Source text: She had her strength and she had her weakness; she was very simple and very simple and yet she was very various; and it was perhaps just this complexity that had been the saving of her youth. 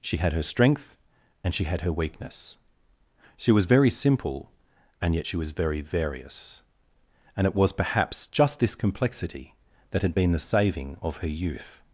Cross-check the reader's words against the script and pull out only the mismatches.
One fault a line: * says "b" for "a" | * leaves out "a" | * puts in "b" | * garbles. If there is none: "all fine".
* leaves out "very simple and"